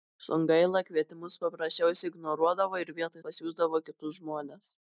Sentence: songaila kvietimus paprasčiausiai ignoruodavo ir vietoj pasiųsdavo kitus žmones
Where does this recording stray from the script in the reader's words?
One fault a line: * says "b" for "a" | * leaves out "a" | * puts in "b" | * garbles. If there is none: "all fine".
all fine